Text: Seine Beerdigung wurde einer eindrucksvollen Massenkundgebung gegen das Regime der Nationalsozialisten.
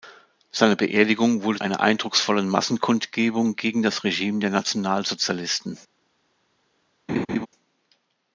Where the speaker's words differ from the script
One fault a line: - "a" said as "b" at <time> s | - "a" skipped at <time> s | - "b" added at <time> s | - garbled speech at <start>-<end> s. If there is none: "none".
none